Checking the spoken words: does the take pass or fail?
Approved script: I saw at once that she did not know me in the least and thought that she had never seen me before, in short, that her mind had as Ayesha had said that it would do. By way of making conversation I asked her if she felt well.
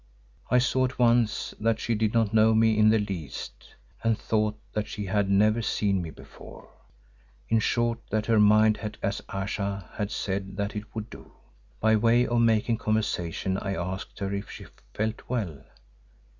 pass